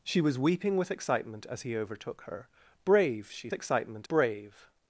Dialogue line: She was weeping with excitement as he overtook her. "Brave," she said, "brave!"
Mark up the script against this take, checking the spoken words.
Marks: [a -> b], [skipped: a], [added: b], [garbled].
She was weeping with excitement as he overtook her. "Brave," she [said, -> excitement] "brave!"